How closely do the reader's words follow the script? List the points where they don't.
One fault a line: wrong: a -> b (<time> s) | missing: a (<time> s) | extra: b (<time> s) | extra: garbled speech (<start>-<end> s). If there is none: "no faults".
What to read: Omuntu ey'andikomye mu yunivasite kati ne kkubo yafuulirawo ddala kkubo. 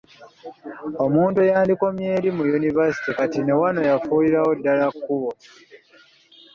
extra: eri (2.2 s)
wrong: kkubo -> wano (3.6 s)